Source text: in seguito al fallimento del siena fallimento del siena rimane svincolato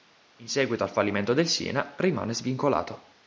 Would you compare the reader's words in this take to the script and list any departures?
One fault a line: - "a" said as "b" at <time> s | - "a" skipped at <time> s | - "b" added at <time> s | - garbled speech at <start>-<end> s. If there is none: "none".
- "fallimento del siena" skipped at 1.9 s